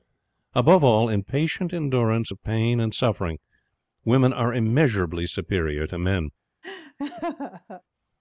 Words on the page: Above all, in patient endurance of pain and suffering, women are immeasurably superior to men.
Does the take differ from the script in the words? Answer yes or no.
no